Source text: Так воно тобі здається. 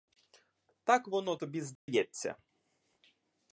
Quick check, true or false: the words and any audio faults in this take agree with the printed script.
false